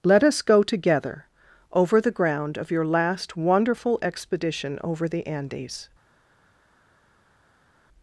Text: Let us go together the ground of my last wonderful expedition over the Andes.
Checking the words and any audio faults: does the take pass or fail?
fail